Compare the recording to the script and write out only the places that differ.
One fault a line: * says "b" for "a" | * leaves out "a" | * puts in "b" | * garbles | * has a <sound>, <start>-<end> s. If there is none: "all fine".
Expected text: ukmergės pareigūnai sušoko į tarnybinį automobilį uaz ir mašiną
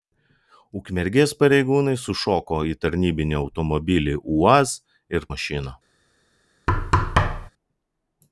* has a thud, 6.7-7.5 s